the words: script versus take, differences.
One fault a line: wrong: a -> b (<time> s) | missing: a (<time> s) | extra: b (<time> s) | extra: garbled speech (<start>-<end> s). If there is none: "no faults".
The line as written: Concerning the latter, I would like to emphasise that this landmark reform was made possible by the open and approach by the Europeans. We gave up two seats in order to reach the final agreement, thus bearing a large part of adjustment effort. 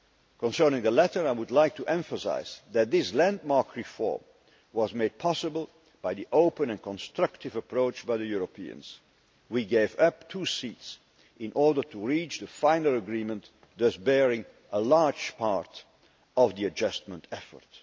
extra: constructive (6.8 s)
extra: the (16.5 s)